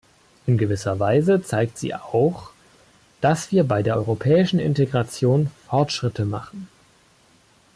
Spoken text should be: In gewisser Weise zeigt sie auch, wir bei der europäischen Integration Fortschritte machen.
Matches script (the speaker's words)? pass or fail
fail